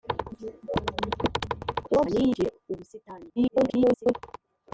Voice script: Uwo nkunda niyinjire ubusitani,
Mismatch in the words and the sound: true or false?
true